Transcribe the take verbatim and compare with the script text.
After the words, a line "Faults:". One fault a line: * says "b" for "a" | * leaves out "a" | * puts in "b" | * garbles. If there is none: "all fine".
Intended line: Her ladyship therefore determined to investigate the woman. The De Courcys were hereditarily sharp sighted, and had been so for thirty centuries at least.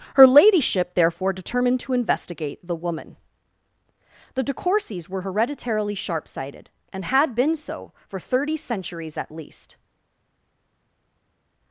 Her ladyship therefore determined to investigate the woman. The De Courcys were hereditarily sharp sighted, and had been so for thirty centuries at least.
Faults:
all fine